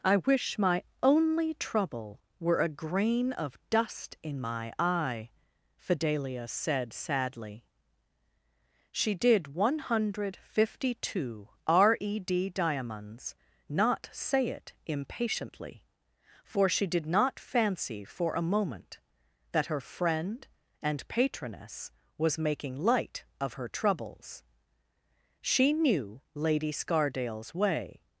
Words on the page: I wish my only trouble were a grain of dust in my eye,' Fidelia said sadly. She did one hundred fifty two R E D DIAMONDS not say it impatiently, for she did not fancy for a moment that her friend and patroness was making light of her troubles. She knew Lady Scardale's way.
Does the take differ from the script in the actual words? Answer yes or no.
no